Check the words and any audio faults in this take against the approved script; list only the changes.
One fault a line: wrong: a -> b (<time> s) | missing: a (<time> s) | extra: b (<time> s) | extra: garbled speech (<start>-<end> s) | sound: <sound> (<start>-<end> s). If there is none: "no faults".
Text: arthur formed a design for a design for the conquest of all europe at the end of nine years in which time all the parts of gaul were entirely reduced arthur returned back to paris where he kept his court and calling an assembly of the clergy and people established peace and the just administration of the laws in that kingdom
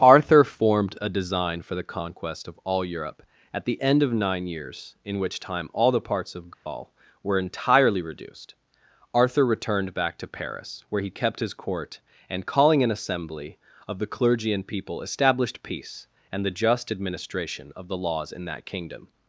missing: a design for (1.8 s)
sound: dropout (6.5-6.7 s)